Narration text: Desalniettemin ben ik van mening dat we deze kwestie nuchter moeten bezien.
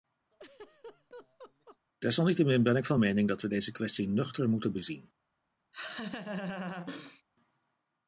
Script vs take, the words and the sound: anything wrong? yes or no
yes